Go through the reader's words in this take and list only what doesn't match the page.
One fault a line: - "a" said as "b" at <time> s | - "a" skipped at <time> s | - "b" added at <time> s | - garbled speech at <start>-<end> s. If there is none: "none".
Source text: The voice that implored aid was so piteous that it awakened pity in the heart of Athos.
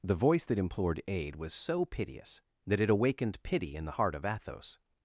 none